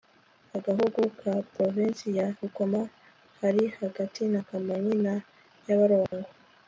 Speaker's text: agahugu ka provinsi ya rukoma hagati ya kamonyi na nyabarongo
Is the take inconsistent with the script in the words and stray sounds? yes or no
yes